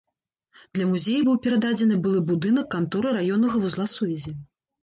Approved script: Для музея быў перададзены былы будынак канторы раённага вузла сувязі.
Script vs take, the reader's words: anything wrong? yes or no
no